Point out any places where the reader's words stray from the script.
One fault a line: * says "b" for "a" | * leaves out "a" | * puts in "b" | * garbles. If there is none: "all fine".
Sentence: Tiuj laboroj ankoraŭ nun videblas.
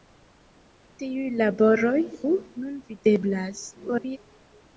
* leaves out "ankoraŭ"
* garbles